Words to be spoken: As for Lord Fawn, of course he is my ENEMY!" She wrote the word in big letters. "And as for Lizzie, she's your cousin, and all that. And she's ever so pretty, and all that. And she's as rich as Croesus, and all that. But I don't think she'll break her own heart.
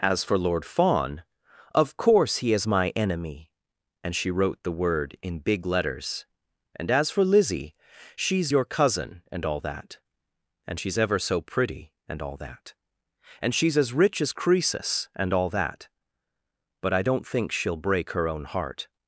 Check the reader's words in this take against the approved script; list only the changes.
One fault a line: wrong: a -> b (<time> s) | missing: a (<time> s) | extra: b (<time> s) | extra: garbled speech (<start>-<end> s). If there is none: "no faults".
extra: And (4.0 s)